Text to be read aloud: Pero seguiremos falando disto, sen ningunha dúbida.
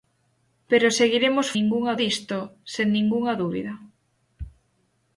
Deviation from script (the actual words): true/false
true